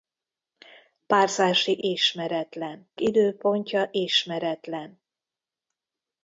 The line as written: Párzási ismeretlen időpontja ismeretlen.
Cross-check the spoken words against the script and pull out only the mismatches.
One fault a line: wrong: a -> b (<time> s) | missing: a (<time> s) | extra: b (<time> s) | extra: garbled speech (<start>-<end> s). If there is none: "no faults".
no faults